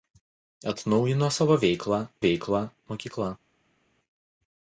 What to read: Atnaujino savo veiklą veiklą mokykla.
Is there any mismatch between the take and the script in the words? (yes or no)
no